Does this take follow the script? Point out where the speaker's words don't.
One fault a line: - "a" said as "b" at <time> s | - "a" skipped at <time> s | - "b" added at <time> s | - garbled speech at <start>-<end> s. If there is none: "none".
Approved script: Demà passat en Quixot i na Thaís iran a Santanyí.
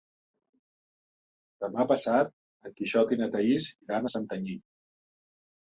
none